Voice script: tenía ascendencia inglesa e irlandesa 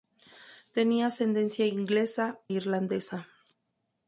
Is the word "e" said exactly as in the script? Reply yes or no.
no